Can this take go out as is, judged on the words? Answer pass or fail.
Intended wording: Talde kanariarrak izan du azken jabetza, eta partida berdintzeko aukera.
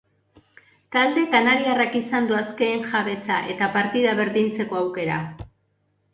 pass